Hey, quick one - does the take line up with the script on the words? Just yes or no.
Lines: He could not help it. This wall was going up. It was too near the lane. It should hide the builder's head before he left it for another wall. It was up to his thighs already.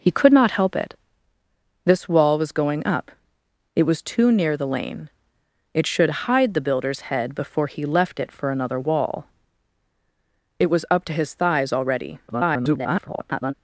no